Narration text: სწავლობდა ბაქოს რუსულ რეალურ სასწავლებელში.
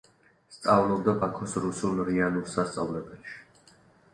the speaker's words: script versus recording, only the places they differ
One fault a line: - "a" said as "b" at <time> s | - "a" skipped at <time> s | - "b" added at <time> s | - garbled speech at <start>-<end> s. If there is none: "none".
none